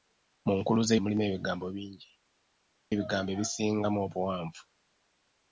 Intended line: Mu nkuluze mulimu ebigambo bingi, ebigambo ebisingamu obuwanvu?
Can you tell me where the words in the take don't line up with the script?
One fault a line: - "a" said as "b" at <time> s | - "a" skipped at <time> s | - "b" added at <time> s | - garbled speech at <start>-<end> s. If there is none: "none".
none